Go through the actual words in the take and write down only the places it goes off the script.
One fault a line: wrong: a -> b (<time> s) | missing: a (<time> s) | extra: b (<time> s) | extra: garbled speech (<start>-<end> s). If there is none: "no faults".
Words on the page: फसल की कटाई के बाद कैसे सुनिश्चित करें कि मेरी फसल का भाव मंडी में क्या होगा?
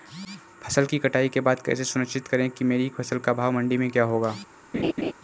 no faults